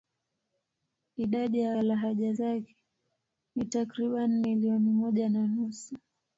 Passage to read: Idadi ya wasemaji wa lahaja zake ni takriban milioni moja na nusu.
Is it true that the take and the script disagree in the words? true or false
true